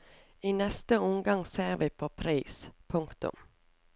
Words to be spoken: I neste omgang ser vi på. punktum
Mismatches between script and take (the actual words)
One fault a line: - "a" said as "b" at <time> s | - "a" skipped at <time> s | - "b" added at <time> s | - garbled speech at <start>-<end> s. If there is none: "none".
- "pris" added at 2.1 s